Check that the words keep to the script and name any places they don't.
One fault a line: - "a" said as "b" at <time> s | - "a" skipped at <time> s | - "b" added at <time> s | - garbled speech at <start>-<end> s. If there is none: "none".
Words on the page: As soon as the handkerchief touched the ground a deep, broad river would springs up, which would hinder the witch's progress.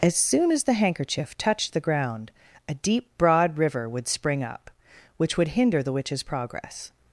- "springs" said as "spring" at 4.1 s